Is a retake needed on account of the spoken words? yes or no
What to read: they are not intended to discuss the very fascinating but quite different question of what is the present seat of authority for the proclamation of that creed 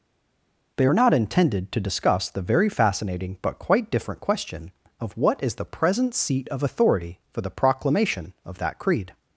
no